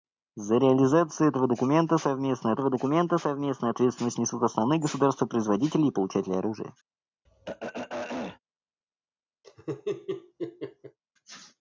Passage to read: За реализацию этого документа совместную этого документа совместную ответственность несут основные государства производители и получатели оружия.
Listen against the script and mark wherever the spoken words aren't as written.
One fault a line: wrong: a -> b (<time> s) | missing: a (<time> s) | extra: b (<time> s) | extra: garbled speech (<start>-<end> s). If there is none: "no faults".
no faults